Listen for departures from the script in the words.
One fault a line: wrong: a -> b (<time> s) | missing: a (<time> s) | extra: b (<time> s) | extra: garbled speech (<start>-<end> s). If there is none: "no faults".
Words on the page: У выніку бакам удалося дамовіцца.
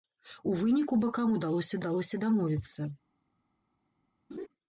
extra: удалося (1.8 s)